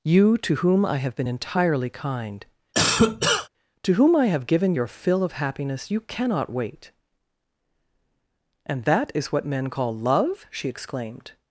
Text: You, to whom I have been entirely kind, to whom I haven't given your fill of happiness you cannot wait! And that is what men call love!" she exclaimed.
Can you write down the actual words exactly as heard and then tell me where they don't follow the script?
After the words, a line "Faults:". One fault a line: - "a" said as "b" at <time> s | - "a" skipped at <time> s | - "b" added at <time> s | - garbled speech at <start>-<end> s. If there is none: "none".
You, to whom I have been entirely kind, to whom I have given your fill of happiness you cannot wait! And that is what men call love!" she exclaimed.
Faults:
- "haven't" said as "have" at 4.3 s